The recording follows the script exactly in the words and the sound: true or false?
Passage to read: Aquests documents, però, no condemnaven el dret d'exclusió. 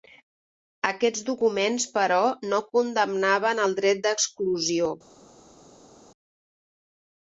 true